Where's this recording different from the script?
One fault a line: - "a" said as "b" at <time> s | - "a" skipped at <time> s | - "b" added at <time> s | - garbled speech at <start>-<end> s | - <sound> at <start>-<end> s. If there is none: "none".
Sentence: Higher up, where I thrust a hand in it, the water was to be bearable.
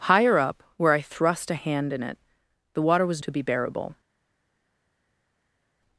none